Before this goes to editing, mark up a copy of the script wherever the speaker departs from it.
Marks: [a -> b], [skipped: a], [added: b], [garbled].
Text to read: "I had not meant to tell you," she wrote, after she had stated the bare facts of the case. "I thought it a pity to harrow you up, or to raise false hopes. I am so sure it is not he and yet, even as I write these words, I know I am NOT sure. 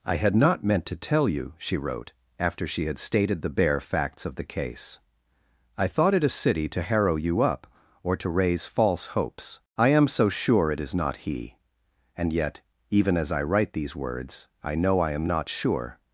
"I had not meant to tell you," she wrote, after she had stated the bare facts of the case. "I thought it a [pity -> city] to harrow you up, or to raise false hopes. I am so sure it is not he and yet, even as I write these words, I know I am NOT sure.